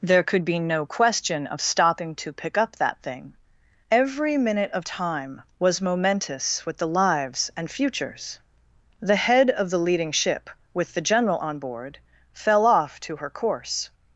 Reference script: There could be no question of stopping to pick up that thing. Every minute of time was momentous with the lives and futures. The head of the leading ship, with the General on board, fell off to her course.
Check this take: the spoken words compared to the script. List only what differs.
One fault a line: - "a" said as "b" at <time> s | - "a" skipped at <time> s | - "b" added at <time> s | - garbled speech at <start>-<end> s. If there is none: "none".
none